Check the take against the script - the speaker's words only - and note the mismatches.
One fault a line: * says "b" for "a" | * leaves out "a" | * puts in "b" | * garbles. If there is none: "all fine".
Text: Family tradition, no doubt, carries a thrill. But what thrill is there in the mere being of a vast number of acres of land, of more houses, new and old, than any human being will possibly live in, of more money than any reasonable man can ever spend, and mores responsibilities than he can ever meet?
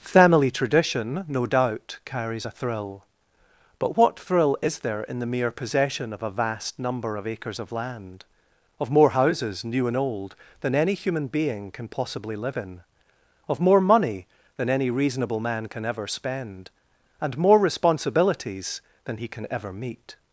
* says "possession" for "being"
* says "can" for "will"
* says "more" for "mores"